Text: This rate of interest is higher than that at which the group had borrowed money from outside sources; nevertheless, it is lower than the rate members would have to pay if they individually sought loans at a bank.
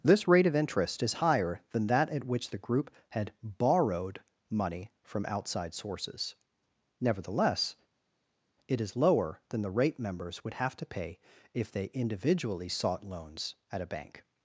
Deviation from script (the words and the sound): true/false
false